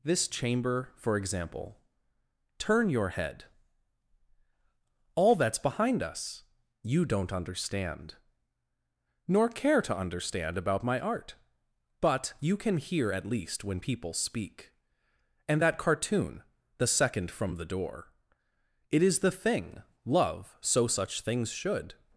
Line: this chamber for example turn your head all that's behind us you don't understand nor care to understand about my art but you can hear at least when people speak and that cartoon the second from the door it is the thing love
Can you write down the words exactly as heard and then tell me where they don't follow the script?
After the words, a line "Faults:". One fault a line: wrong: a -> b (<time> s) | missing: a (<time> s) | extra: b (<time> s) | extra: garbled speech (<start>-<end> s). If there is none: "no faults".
this chamber for example turn your head all that's behind us you don't understand nor care to understand about my art but you can hear at least when people speak and that cartoon the second from the door it is the thing love so such things should
Faults:
extra: so such things should (20.6 s)